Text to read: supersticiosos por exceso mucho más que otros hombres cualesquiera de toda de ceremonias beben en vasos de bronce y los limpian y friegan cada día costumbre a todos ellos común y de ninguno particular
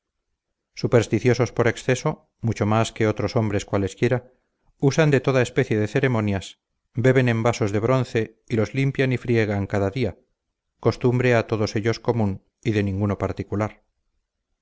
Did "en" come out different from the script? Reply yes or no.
no